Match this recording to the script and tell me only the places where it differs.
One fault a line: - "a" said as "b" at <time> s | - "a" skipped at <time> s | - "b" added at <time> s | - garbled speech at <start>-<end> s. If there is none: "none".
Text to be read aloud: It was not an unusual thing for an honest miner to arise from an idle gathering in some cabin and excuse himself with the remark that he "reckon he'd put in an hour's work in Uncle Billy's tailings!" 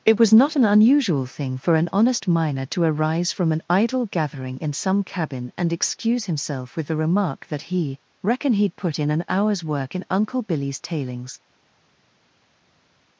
none